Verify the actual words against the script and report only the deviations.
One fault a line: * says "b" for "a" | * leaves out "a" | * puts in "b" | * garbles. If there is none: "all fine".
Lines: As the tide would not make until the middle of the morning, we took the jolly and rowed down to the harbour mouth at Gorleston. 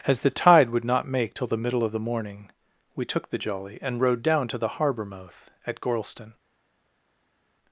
* says "till" for "until"